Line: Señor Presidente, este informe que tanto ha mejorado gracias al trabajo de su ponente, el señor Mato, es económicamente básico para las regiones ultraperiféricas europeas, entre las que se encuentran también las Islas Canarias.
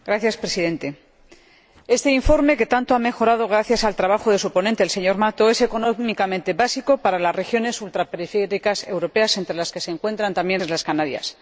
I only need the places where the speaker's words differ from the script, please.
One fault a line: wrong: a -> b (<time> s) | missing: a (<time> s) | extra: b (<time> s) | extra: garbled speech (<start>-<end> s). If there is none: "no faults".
missing: las (10.6 s)